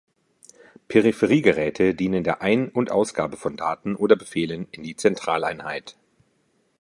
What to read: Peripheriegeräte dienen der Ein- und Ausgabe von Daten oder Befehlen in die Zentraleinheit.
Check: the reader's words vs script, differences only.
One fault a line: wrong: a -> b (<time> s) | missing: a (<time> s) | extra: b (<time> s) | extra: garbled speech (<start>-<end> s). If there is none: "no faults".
no faults